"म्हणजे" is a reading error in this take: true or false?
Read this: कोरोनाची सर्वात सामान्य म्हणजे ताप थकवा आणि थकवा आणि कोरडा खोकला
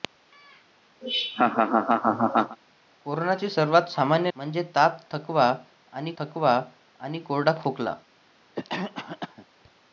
false